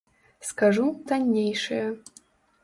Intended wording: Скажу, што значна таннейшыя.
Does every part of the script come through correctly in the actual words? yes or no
no